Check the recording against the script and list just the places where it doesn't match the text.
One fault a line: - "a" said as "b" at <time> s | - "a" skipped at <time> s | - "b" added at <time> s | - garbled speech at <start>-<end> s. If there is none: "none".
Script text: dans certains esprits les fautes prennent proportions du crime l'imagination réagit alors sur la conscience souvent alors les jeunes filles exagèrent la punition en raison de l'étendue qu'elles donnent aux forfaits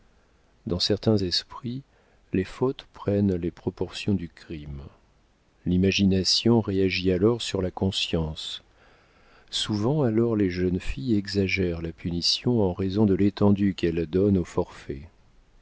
- "les" added at 3.3 s